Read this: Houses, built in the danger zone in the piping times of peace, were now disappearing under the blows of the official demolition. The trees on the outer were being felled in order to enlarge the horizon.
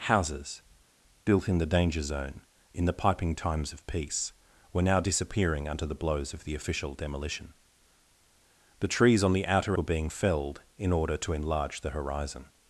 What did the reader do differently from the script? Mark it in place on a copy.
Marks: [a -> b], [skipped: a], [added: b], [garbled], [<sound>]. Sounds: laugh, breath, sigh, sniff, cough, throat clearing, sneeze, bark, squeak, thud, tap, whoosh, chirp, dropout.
Houses, built in the danger zone in the piping times of peace, were now disappearing under the blows of the official demolition. The trees on the outer were being felled in order to enlarge the horizon.